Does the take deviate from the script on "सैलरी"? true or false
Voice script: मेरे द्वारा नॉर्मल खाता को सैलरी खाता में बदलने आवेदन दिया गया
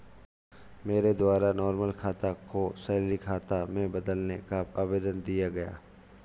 false